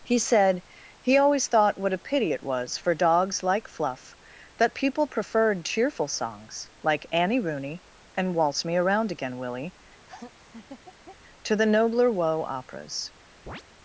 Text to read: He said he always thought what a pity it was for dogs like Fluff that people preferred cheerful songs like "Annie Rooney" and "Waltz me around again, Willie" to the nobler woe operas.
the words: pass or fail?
pass